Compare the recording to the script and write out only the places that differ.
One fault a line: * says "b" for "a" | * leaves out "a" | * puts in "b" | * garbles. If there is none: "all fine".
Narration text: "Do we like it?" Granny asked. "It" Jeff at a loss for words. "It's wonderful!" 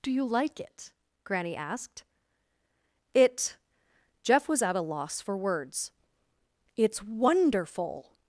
* says "you" for "we"
* puts in "was"